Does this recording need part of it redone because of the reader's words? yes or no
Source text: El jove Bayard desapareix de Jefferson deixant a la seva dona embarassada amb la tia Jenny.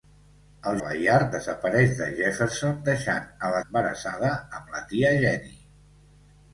yes